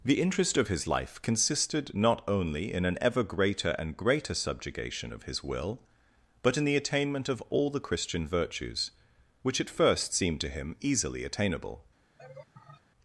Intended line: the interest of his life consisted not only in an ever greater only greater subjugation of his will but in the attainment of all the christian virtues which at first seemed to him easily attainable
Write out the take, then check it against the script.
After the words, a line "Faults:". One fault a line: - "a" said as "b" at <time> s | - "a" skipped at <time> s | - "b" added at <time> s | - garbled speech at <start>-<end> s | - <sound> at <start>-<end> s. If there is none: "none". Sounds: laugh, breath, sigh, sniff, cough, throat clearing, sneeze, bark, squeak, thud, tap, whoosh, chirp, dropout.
the interest of his life consisted not only in an ever greater and greater subjugation of his will but in the attainment of all the christian virtues which at first seemed to him easily attainable
Faults:
- "only" said as "and" at 3.8 s
- laugh at 12.2-12.8 s